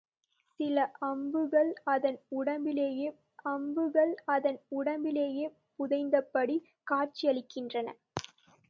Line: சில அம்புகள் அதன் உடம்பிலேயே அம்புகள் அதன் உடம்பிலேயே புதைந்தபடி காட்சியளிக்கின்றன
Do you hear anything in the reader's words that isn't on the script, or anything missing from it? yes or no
no